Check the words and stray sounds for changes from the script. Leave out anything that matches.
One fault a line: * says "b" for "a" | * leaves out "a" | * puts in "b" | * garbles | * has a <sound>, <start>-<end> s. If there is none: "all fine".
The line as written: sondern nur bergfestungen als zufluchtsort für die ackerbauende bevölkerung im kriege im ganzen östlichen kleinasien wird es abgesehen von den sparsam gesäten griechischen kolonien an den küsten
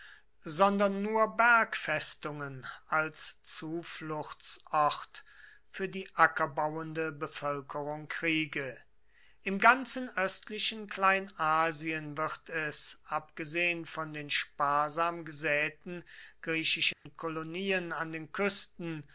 * leaves out "im"
* has a dropout, 16.9-17.1 s